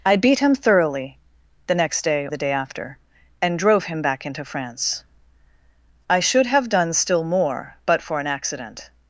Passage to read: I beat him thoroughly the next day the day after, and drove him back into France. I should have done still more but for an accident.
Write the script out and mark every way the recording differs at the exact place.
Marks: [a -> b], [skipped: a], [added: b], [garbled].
I beat him thoroughly the next day the day after, and drove him back into France. I should have done still more but for an accident.